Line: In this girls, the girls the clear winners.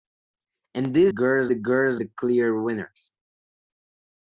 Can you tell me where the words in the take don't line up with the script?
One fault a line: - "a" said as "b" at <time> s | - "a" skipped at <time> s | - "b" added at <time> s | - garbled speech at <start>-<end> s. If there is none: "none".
none